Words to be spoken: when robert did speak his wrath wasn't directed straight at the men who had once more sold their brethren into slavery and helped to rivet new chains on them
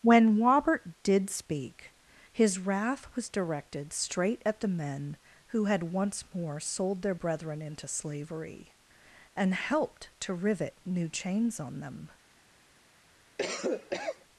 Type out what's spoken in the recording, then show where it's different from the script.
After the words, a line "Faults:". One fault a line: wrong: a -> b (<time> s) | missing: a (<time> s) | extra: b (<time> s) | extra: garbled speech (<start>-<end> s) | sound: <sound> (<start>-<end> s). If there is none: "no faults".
when robert did speak his wrath was directed straight at the men who had once more sold their brethren into slavery and helped to rivet new chains on them
Faults:
wrong: wasn't -> was (3.2 s)
sound: cough (13.4-14.3 s)